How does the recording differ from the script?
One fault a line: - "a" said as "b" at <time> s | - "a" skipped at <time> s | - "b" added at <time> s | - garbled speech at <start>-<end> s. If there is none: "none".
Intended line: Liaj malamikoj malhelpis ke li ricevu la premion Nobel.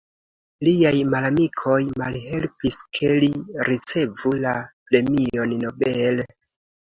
none